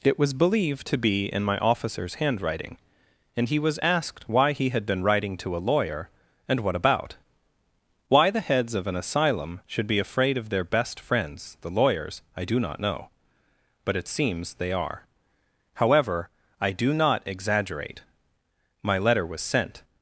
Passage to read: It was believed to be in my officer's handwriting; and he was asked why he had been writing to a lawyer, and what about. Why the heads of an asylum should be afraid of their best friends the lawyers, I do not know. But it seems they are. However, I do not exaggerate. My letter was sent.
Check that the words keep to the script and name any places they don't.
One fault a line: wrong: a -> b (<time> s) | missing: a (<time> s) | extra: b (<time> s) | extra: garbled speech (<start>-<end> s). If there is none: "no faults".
no faults